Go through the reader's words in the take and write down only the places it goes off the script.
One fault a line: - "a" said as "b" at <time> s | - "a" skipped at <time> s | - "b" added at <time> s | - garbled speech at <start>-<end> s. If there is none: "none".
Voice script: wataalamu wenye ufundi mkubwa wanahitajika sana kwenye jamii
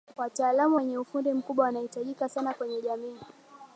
none